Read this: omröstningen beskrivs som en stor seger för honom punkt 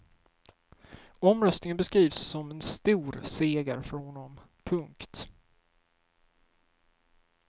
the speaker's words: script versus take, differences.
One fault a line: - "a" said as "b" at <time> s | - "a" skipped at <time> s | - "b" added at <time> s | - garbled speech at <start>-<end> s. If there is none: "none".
none